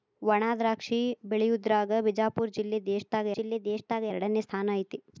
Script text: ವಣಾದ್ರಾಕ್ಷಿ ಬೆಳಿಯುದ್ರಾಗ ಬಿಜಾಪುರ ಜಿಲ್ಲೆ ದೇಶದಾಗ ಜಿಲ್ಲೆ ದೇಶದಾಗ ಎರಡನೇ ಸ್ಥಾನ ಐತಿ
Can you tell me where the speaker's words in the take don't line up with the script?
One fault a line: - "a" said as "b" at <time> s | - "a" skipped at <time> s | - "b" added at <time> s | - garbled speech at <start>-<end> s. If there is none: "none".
none